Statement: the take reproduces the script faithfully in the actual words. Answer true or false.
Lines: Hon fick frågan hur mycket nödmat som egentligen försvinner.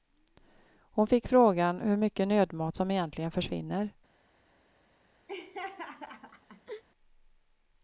true